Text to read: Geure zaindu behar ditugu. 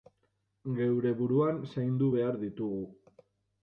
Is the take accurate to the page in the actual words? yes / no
no